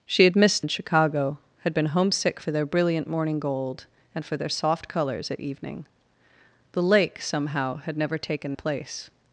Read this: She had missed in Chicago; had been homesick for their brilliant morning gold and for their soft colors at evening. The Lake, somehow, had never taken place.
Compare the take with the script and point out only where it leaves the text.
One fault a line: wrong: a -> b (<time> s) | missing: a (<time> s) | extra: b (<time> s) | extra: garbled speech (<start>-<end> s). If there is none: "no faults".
no faults